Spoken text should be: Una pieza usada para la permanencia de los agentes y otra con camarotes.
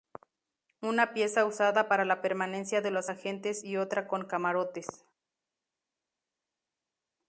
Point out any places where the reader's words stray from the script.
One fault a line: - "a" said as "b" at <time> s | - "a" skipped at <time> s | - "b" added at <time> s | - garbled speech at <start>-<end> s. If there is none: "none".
none